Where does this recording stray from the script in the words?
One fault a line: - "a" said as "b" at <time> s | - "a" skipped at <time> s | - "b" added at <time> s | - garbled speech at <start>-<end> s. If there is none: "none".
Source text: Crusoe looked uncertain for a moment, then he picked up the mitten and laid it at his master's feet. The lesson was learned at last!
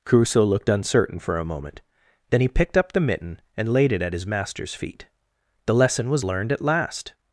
none